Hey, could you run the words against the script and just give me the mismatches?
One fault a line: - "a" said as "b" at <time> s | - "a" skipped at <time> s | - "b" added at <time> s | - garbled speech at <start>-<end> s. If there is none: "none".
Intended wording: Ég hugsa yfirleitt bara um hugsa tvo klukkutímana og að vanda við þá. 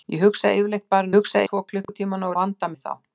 none